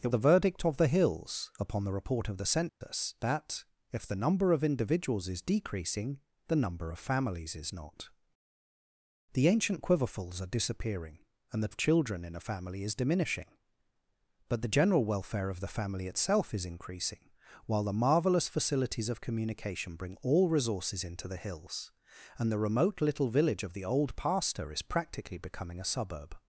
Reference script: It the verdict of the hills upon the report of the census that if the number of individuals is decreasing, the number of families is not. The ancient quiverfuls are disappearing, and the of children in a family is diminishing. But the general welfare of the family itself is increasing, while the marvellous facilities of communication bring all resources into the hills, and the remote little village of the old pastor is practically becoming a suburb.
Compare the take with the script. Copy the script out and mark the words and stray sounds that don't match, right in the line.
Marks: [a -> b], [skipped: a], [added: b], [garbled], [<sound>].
It the verdict of the hills upon the report of the census [dropout] that if the number of individuals is decreasing, the number of families is not. The ancient quiverfuls are disappearing, and the of children in a family is diminishing. But the general welfare of the family itself is increasing, while the marvellous facilities of communication bring all resources into the hills, and the remote little village of the old pastor is practically becoming a suburb.